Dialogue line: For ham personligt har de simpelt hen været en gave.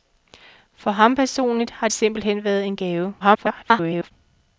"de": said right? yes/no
no